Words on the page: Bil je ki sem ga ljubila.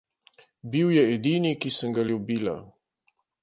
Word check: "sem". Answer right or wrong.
right